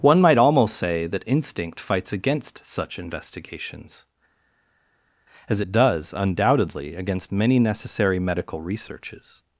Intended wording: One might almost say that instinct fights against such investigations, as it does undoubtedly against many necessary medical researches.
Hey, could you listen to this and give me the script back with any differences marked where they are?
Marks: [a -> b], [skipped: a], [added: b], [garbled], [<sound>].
One might almost say that instinct fights against such investigations, as it does undoubtedly against many necessary medical researches.